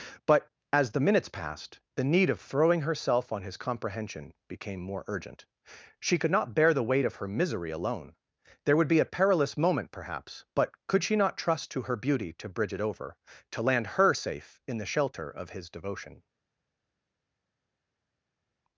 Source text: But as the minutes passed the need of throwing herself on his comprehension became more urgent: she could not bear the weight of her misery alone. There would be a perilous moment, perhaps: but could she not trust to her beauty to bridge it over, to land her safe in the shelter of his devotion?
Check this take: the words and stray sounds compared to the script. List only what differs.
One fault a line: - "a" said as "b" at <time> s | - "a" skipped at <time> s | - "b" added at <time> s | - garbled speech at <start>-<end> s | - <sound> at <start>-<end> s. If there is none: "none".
none